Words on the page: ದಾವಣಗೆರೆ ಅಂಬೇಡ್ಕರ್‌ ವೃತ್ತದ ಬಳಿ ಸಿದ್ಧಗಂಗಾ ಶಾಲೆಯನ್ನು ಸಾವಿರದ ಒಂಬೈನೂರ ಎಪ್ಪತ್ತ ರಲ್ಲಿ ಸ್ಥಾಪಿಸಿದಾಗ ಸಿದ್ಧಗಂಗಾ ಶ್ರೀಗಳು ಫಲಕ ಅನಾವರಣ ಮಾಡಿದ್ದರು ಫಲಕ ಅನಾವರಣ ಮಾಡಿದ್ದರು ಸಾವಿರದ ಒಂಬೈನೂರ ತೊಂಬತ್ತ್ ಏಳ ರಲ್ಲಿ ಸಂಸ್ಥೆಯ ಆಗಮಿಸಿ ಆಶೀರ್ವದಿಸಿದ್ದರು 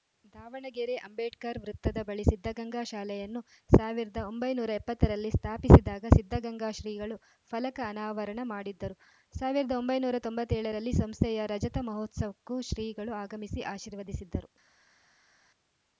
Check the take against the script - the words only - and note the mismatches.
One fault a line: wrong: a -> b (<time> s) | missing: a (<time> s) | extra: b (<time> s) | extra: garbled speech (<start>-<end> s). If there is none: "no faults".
missing: ಫಲಕ ಅನಾವರಣ ಮಾಡಿದ್ದರು (9.0 s)
extra: ರಜತ ಮಹೋತ್ಸವಕ್ಕೂ ಶ್ರೀಗಳು (11.5 s)